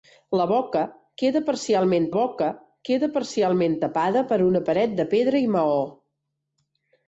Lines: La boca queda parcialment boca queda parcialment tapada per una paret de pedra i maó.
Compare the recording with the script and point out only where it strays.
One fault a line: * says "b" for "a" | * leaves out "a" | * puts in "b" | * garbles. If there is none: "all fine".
all fine